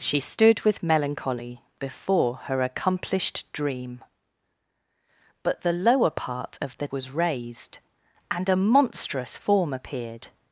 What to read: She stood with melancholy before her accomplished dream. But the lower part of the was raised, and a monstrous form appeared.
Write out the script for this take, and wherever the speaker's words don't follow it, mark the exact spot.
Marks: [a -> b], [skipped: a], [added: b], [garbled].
She stood with melancholy before her accomplished dream. But the lower part of the was raised, and a monstrous form appeared.